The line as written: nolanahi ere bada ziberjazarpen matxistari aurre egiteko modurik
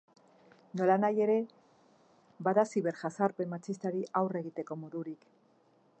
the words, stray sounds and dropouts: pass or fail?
pass